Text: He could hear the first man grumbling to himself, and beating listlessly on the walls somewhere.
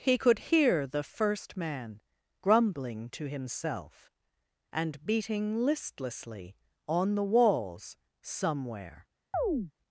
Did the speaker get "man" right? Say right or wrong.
right